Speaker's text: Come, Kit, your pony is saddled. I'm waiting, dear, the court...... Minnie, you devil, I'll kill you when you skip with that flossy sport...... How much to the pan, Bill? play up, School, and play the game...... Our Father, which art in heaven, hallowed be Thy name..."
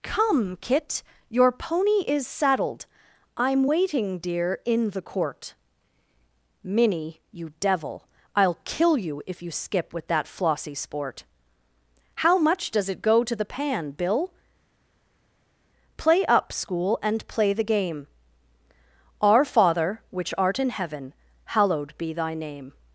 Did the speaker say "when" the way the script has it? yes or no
no